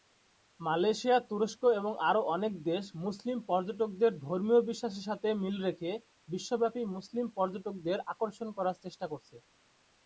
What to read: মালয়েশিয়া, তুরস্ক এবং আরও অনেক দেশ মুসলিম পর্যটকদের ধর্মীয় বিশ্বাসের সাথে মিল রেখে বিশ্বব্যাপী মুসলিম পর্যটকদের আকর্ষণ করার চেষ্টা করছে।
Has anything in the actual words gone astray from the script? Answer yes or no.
no